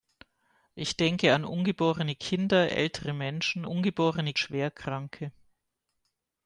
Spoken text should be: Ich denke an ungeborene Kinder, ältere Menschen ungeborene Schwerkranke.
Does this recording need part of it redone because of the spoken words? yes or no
no